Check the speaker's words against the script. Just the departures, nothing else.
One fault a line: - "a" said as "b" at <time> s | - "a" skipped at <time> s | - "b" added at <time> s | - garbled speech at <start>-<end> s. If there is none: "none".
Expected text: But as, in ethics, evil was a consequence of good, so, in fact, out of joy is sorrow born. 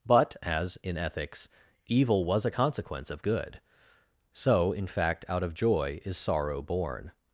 none